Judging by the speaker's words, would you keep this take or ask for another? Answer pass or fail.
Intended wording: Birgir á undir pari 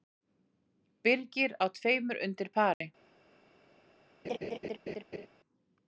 fail